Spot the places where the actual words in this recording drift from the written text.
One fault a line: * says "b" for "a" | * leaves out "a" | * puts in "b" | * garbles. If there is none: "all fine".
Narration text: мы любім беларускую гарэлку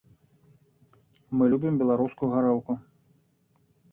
all fine